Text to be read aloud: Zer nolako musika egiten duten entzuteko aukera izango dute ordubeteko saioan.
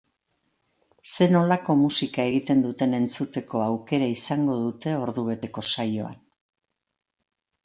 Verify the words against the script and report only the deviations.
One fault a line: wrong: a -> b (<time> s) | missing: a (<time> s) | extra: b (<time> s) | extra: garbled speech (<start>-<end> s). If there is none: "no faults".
no faults